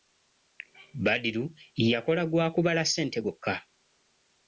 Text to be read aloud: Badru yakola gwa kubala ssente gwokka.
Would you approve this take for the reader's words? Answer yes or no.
yes